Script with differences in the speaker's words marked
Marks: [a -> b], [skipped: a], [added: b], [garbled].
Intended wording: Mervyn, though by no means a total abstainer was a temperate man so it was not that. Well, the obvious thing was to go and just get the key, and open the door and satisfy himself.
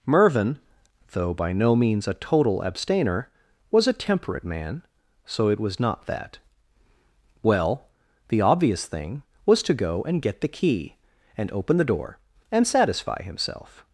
Mervyn, though by no means a total abstainer was a temperate man so it was not that. Well, the obvious thing was to go and [skipped: just] get the key, and open the door and satisfy himself.